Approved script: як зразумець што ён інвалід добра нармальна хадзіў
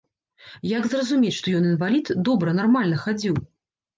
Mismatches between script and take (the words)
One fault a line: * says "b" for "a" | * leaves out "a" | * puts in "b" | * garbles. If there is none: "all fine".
all fine